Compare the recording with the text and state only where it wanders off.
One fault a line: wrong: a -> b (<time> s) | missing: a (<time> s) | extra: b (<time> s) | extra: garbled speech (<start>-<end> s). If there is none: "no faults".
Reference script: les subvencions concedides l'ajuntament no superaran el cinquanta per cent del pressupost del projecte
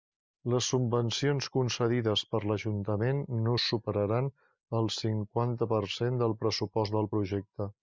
extra: per (2.3 s)